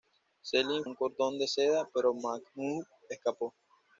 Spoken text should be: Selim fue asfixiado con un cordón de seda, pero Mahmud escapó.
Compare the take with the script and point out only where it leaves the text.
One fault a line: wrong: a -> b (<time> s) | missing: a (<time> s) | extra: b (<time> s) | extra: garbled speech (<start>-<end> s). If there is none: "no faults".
missing: fue asfixiado con (0.8 s)